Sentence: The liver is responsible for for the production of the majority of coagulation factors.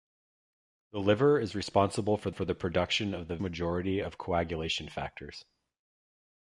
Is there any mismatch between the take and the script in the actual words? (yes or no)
no